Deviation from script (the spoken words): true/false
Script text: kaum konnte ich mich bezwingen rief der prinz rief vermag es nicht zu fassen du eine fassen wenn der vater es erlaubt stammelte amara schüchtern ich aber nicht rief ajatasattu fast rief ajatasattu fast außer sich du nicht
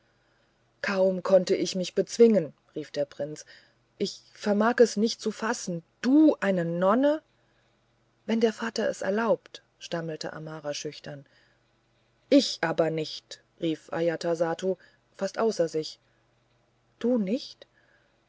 true